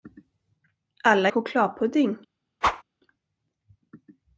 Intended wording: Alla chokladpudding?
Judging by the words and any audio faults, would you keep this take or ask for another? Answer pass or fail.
fail